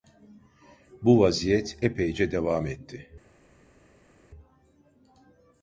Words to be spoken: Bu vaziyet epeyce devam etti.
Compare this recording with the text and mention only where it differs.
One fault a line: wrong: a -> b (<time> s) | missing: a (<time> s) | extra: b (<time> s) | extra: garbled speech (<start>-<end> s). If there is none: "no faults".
no faults